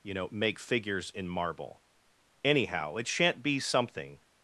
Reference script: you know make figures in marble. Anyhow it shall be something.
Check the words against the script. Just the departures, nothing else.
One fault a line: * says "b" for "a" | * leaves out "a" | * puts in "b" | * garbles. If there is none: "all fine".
* says "shan't" for "shall"